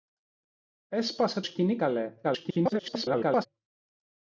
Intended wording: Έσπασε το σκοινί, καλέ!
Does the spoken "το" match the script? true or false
false